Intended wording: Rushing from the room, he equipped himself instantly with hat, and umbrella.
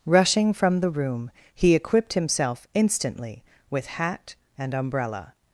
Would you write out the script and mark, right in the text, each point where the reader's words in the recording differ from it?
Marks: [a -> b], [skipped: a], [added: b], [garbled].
Rushing from the room, he equipped himself instantly with hat, and umbrella.